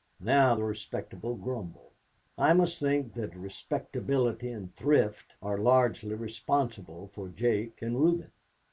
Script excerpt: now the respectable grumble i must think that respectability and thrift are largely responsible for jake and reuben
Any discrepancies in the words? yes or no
no